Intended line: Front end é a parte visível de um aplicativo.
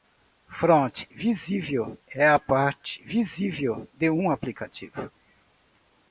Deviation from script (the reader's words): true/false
true